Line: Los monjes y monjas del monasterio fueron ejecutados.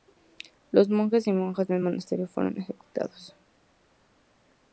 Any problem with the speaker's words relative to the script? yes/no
no